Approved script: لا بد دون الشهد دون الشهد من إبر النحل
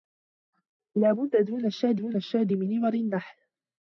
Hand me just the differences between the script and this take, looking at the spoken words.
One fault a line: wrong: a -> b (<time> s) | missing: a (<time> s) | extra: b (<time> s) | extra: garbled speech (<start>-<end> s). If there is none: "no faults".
no faults